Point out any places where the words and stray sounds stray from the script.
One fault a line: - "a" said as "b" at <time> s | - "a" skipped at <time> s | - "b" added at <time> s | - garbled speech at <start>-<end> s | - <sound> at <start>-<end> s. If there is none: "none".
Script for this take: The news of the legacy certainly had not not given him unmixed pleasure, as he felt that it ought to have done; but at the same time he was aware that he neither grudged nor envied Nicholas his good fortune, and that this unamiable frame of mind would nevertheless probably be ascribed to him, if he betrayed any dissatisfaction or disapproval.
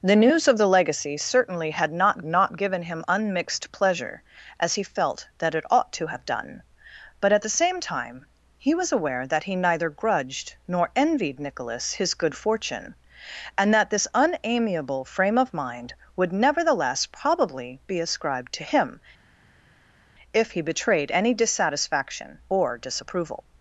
none